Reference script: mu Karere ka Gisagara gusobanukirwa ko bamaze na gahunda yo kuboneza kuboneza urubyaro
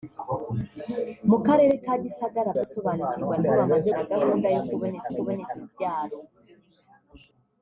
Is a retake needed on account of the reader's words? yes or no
no